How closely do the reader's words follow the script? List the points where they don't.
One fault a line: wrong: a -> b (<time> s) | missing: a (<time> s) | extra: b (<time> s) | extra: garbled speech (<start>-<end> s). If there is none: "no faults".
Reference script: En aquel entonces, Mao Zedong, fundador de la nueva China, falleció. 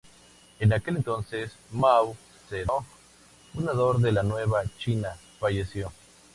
no faults